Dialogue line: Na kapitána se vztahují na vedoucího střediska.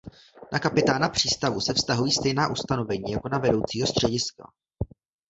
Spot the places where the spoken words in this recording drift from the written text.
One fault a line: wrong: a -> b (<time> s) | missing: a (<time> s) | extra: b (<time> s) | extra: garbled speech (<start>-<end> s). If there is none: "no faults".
extra: přístavu (1.1 s)
extra: stejná ustanovení jako (2.1 s)